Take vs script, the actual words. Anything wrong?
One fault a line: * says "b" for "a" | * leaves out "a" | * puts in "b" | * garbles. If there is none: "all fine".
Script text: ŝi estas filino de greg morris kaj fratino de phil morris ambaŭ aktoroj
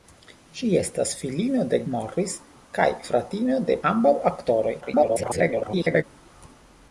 * leaves out "greg"
* leaves out "phil morris"
* garbles